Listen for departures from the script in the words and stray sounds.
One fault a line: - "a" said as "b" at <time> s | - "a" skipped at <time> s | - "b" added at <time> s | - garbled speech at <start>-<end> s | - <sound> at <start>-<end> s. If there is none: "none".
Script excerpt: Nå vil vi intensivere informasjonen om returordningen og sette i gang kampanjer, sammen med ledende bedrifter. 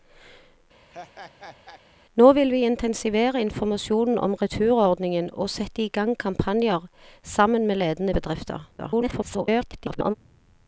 - laugh at 0.9-1.8 s
- garbled speech at 8.8-10.2 s